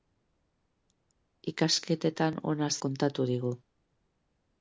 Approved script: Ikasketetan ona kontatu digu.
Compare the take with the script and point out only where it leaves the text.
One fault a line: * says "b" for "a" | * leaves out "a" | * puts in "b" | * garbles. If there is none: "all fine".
all fine